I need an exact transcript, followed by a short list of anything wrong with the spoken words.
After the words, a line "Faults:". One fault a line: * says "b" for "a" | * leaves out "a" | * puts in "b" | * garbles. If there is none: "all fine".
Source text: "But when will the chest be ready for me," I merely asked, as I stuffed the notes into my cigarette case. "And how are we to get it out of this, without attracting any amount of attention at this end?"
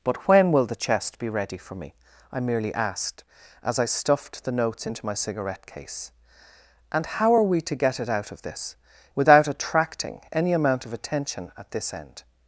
"But when will the chest be ready for me," I merely asked, as I stuffed the notes into my cigarette case. "And how are we to get it out of this, without attracting any amount of attention at this end?"
Faults:
all fine